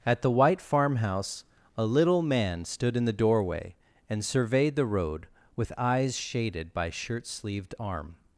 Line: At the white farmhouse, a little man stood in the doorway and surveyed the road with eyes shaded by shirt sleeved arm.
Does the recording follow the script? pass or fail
pass